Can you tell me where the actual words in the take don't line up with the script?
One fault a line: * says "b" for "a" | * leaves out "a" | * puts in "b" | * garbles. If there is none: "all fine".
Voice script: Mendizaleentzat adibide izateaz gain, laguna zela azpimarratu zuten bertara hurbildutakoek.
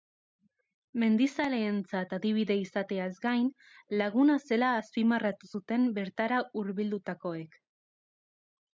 all fine